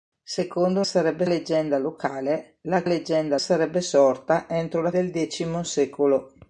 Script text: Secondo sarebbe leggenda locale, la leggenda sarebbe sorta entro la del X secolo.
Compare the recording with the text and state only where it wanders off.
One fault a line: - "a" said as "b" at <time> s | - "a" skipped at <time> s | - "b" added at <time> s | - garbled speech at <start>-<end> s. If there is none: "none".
none